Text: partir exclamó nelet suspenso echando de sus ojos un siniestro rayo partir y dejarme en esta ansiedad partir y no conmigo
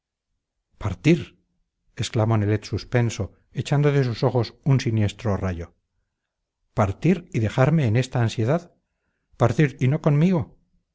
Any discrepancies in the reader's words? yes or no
no